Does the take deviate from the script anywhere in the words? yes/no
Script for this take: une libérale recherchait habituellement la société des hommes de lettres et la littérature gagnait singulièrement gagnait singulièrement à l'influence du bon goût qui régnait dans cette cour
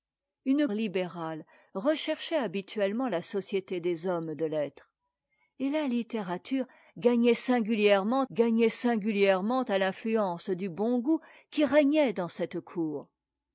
no